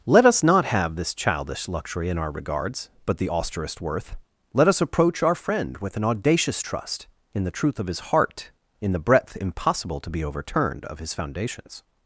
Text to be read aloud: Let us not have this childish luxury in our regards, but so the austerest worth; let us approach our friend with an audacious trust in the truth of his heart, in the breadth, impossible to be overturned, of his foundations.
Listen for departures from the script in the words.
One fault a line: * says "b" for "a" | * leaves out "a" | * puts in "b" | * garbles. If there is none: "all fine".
* leaves out "so"